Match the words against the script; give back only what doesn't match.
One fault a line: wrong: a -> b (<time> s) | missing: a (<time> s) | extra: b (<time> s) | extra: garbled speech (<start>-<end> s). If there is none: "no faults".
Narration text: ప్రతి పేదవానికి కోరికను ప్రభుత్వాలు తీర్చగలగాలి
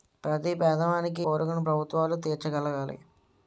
no faults